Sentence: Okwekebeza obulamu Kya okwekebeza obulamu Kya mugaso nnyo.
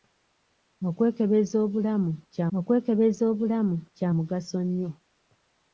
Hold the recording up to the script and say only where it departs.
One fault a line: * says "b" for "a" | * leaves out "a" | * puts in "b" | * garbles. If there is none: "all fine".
all fine